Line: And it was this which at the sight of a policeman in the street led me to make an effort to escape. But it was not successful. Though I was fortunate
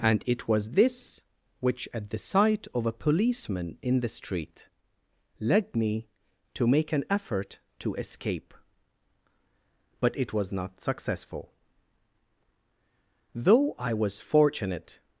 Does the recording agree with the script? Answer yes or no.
yes